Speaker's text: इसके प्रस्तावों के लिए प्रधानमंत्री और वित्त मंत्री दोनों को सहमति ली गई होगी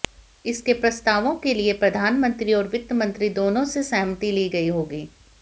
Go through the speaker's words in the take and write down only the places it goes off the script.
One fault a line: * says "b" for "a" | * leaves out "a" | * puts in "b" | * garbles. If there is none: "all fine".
* says "से" for "को"